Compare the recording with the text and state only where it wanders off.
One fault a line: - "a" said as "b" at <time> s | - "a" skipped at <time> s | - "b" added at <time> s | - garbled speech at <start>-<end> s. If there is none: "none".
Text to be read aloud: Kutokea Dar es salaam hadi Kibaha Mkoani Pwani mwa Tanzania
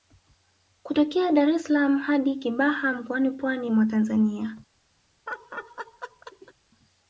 none